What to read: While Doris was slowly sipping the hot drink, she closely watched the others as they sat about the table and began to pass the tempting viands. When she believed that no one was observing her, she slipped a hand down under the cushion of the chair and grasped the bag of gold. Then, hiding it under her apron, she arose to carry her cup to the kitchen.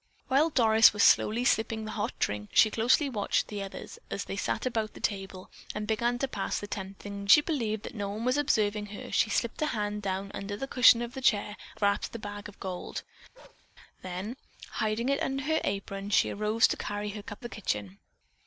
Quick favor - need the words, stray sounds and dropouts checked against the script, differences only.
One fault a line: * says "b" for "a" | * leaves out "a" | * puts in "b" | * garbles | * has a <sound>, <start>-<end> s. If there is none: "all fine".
* leaves out "viands When"
* leaves out "and"
* has a bark, 13.3-13.7 s
* leaves out "to"